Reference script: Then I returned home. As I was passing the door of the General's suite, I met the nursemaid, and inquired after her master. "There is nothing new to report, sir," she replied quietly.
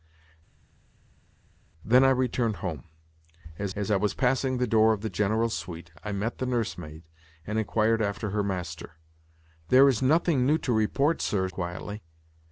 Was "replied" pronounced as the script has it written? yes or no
no